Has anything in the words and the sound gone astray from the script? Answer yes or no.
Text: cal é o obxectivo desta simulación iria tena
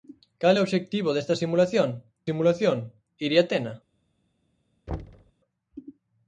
yes